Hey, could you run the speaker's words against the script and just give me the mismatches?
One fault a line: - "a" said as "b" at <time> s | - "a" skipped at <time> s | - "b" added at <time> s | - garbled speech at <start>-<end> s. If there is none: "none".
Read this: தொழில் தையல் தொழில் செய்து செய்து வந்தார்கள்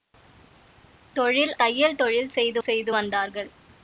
none